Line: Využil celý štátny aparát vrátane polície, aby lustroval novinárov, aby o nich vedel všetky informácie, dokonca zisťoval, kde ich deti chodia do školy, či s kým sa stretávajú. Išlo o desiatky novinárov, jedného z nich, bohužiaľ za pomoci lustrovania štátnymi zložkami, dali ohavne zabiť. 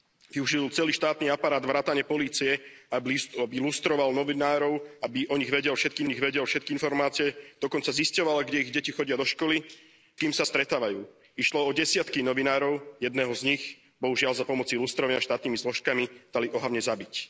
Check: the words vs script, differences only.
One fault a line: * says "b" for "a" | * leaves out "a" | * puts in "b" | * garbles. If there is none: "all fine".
* puts in "nich vedel všetky"
* leaves out "či s"